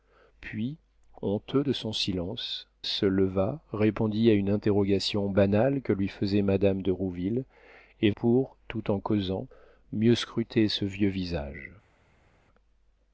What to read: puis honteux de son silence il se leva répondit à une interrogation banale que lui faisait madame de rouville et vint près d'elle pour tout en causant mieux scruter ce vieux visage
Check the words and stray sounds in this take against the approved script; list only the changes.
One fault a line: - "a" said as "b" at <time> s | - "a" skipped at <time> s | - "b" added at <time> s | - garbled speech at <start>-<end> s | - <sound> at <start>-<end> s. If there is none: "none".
- "il" skipped at 2.7 s
- "vint près d'elle" skipped at 8.1 s